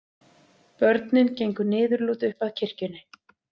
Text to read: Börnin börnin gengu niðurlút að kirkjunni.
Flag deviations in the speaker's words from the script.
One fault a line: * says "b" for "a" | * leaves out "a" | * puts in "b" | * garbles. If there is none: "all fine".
* leaves out "börnin"
* puts in "upp"